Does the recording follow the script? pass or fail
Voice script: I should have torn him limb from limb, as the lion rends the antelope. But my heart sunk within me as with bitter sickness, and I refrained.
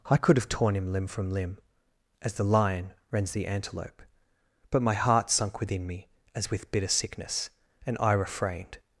fail